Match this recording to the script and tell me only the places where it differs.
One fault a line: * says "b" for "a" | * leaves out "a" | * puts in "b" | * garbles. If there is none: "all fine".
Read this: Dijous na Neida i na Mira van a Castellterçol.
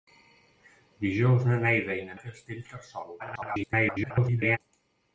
* leaves out "Mira van"
* garbles